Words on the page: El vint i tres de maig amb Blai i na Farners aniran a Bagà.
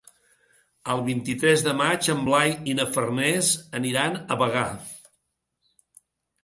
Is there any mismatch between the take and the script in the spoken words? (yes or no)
yes